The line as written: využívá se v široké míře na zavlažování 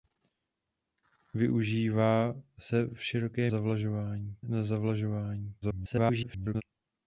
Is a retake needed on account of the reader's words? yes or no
yes